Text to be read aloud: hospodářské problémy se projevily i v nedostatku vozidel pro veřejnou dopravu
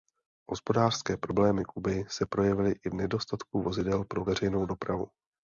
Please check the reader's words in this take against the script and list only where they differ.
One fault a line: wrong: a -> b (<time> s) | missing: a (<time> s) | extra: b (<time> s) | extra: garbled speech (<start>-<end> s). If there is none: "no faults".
extra: kuby (1.6 s)